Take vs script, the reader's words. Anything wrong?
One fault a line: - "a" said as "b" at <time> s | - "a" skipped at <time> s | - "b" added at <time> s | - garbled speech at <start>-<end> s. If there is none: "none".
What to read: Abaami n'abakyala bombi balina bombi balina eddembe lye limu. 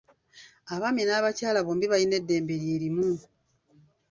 - "bombi balina" skipped at 2.1 s